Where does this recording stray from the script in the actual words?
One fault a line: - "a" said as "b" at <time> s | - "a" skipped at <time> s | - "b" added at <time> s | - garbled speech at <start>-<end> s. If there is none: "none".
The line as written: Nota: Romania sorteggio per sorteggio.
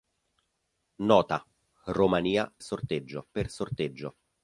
none